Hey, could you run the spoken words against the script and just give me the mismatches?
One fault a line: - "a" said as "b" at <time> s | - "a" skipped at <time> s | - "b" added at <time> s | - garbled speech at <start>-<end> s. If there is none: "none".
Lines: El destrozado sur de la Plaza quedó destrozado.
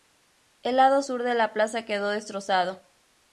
- "destrozado" said as "lado" at 0.8 s